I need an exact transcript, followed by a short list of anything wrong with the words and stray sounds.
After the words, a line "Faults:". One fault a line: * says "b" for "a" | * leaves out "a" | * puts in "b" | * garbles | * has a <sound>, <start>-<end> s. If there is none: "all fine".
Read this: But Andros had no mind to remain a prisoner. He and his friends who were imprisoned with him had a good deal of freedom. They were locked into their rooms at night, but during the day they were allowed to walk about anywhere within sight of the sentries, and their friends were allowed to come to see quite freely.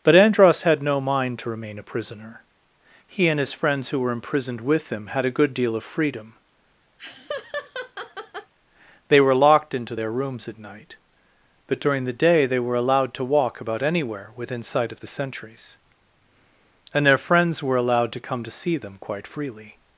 But Andros had no mind to remain a prisoner. He and his friends who were imprisoned with him had a good deal of freedom. They were locked into their rooms at night, but during the day they were allowed to walk about anywhere within sight of the sentries, and their friends were allowed to come to see them quite freely.
Faults:
* has a laugh, 7.0-8.5 s
* puts in "them"